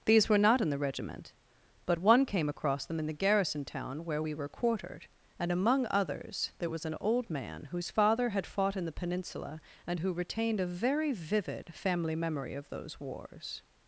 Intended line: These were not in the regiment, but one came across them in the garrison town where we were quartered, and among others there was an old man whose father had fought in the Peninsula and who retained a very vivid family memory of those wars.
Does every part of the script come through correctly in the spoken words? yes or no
yes